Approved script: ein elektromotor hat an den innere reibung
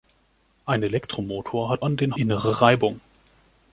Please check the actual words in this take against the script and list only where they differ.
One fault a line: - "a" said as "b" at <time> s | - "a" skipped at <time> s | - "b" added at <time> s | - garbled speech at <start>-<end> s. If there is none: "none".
none